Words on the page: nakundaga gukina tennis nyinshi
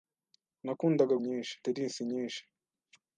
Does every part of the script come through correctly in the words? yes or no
no